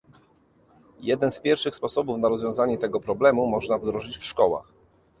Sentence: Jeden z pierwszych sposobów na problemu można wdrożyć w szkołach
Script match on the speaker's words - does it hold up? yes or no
no